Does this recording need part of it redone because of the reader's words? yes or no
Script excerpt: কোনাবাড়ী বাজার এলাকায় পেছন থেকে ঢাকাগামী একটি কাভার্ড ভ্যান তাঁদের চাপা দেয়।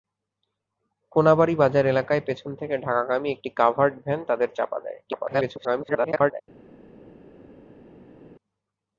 yes